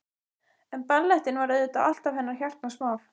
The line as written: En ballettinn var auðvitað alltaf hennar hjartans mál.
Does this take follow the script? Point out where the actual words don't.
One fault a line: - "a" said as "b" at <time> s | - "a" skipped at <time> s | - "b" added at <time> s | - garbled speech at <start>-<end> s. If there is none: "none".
none